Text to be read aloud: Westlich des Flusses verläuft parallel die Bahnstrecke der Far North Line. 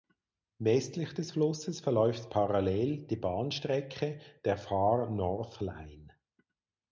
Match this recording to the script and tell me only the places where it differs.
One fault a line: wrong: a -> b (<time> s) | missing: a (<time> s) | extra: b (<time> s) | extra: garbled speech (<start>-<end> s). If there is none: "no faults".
no faults